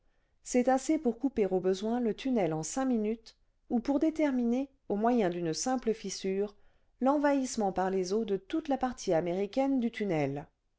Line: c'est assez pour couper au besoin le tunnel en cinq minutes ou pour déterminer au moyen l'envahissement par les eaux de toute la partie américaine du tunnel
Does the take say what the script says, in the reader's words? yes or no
no